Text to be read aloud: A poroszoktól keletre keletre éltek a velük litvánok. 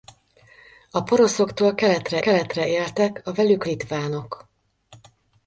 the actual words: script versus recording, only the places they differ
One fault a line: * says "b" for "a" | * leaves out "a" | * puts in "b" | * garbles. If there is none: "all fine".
all fine